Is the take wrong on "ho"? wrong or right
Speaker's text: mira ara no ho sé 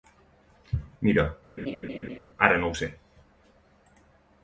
right